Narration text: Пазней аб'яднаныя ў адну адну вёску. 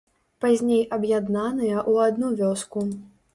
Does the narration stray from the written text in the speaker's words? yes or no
yes